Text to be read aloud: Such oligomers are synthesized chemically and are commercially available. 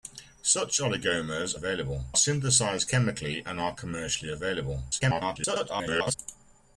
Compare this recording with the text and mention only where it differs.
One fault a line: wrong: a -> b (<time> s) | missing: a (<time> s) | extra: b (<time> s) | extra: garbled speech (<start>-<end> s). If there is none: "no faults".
wrong: are -> available (1.5 s)
extra: garbled speech (4.9-6.1 s)